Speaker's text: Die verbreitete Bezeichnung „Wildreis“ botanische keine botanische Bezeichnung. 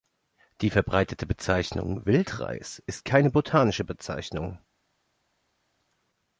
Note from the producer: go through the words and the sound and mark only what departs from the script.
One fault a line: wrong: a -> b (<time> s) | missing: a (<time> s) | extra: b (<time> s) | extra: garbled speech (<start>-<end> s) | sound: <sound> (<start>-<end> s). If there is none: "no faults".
wrong: botanische -> ist (2.9 s)